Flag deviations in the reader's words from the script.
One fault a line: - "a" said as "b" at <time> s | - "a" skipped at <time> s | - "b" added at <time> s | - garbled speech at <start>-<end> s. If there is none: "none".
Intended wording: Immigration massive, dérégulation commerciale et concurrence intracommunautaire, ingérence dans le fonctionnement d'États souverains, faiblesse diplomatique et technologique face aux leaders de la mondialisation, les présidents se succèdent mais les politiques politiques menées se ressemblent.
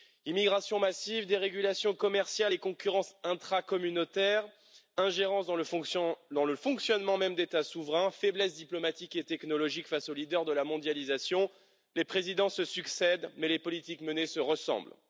- "même" added at 7.2 s
- "politiques" skipped at 14.0 s